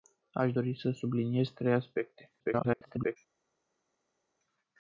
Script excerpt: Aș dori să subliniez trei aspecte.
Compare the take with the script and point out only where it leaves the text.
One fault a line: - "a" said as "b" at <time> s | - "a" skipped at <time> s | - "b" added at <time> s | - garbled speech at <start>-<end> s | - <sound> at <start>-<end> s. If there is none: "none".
- garbled speech at 2.4-3.2 s